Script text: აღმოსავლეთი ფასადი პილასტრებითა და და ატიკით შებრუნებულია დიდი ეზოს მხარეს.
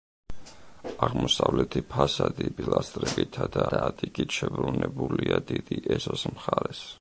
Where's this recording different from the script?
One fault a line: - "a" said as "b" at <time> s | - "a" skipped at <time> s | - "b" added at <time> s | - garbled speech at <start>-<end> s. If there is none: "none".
none